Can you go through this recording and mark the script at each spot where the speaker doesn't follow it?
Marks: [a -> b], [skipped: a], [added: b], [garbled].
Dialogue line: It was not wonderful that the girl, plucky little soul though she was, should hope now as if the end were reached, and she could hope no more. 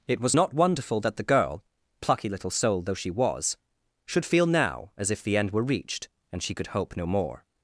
It was not wonderful that the girl, plucky little soul though she was, should [hope -> feel] now as if the end were reached, and she could hope no more.